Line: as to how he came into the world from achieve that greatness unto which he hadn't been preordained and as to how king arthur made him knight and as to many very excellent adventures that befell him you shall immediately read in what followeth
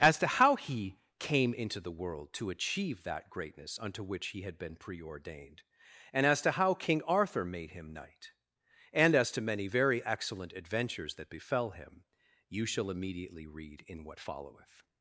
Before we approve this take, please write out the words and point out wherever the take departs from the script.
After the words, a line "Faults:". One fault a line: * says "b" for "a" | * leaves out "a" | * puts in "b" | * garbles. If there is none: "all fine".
as to how he came into the world to achieve that greatness unto which he had been preordained and as to how king arthur made him knight and as to many very excellent adventures that befell him you shall immediately read in what followeth
Faults:
* says "to" for "from"
* says "had" for "hadn't"